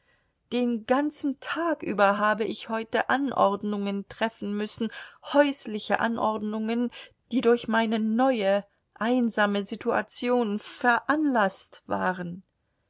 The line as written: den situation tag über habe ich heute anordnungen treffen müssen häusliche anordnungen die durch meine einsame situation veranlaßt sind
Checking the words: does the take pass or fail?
fail